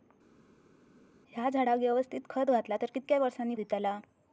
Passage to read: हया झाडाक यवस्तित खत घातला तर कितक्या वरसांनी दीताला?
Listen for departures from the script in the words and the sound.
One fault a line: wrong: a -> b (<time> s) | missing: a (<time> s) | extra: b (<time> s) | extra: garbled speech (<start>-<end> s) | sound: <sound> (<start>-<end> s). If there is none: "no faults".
no faults